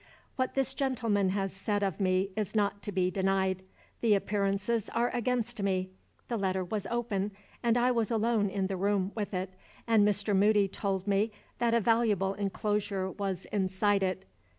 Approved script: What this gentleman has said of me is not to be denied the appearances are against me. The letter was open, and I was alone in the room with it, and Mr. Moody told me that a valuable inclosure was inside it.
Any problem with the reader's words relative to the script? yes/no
no